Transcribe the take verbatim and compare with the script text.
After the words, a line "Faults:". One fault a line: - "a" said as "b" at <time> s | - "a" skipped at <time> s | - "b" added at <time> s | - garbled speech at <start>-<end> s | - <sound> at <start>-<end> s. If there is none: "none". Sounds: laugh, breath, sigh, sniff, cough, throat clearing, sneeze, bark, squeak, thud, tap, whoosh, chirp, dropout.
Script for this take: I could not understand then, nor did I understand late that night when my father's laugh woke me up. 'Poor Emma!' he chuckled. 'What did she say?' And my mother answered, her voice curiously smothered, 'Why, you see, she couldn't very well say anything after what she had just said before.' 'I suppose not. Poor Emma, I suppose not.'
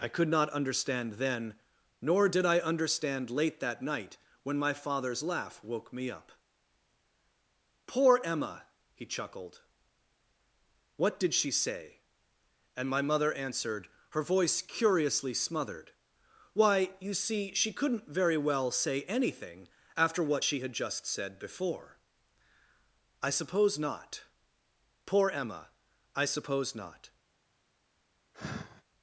I could not understand then, nor did I understand late that night when my father's laugh woke me up. 'Poor Emma!' he chuckled. 'What did she say?' And my mother answered, her voice curiously smothered, 'Why, you see, she couldn't very well say anything after what she had just said before.' 'I suppose not. Poor Emma, I suppose not.'
Faults:
- sigh at 28.3-28.8 s